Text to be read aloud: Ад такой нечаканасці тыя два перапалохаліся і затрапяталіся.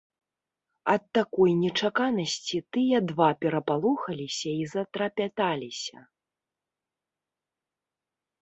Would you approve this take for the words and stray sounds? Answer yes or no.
yes